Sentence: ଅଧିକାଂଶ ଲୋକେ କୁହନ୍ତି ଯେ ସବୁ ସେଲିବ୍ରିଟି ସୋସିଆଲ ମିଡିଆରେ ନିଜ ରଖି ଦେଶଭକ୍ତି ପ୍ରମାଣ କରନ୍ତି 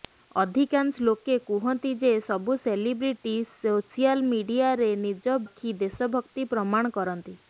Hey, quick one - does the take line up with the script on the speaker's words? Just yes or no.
yes